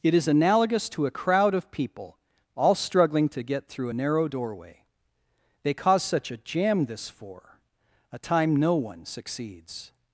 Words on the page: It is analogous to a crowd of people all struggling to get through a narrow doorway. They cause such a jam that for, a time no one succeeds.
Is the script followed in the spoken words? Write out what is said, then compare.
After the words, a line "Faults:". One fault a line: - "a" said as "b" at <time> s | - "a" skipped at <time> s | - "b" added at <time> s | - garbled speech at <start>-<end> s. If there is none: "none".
It is analogous to a crowd of people all struggling to get through a narrow doorway. They cause such a jam this for, a time no one succeeds.
Faults:
- "that" said as "this" at 6.8 s